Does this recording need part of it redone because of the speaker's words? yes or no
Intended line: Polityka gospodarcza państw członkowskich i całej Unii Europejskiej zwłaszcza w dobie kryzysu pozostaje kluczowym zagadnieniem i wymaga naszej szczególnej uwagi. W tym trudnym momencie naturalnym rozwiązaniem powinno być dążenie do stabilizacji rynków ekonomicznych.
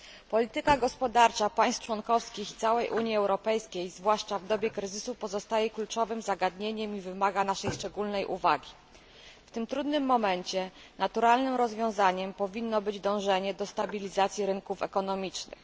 no